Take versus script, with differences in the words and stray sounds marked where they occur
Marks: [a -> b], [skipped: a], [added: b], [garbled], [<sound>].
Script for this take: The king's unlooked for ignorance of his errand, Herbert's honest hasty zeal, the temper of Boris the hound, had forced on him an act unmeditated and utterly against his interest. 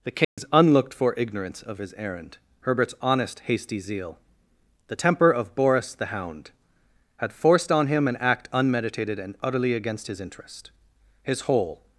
The king's [dropout] unlooked for ignorance of his errand, Herbert's honest hasty zeal, the temper of Boris the hound, had forced on him an act unmeditated and utterly against his interest. [added: His whole]